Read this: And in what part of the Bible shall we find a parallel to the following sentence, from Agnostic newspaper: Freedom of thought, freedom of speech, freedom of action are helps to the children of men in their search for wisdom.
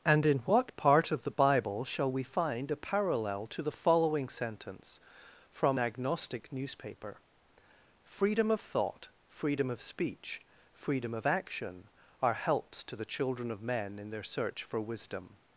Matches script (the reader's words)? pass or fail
pass